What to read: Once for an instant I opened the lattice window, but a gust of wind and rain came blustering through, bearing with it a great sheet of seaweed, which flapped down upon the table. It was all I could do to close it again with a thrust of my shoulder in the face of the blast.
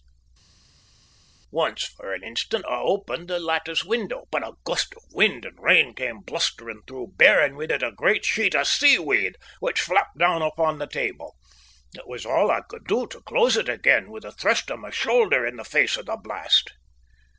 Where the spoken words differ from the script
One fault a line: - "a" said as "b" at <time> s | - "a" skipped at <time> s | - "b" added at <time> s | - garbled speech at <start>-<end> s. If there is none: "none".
none